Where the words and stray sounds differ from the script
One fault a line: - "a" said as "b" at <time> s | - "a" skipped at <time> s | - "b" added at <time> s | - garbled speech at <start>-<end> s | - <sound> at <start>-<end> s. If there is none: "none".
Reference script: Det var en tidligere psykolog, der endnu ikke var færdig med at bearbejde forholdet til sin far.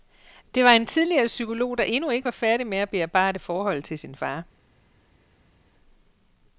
none